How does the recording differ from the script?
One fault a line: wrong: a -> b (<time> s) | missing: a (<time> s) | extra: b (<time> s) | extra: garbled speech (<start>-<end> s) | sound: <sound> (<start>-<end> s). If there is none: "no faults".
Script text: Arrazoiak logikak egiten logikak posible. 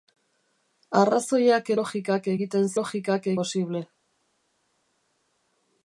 no faults